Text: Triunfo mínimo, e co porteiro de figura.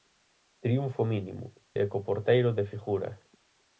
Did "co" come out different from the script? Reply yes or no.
no